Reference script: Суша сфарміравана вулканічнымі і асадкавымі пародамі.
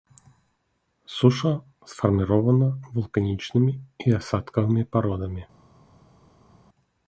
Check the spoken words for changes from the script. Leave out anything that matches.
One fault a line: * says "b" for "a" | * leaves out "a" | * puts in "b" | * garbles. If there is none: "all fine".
all fine